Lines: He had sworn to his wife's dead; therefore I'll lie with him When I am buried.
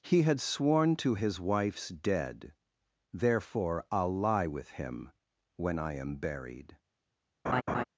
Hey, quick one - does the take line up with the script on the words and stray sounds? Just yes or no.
no